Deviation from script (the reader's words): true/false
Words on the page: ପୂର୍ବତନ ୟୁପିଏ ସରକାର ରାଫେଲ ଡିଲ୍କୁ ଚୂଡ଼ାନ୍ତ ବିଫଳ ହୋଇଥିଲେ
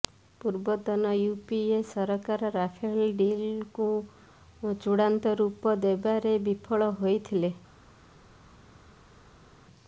true